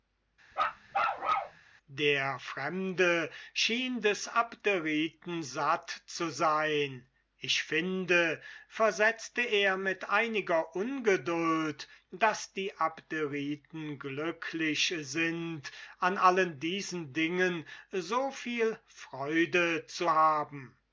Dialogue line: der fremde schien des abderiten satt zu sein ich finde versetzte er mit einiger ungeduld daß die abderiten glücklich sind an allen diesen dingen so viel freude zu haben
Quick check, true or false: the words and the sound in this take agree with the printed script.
false